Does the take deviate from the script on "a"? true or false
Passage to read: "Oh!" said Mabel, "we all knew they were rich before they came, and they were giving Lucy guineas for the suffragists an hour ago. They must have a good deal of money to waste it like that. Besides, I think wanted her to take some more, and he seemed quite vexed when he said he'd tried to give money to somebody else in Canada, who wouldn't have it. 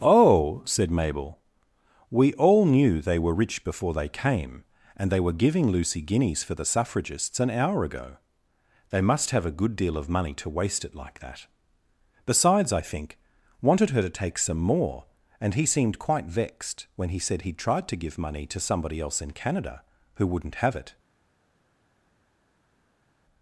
false